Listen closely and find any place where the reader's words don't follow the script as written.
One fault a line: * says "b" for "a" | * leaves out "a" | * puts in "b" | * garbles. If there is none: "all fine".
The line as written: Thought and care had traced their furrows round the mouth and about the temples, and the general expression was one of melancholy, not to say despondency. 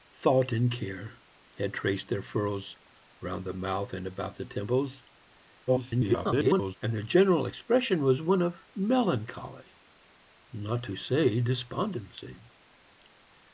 * garbles